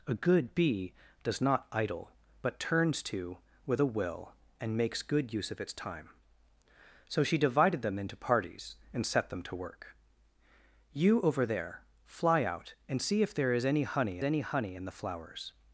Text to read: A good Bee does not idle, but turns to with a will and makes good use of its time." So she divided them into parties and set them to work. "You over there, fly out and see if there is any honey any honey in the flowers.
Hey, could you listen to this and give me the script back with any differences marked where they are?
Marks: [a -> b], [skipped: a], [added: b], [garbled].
A good Bee does not idle, but turns to with a will and makes good use of its time." So she divided them into parties and set them to work. "You over there, fly out and see if there is any honey any honey in the flowers.